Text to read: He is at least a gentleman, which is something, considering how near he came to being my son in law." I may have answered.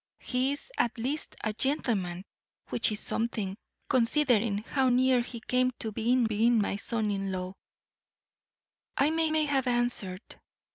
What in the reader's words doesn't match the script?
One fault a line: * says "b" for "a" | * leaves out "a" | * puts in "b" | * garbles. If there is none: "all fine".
* puts in "being"
* puts in "may"